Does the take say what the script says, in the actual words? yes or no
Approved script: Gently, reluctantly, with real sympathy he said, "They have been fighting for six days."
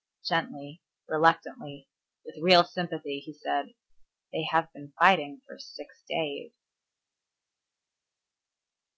yes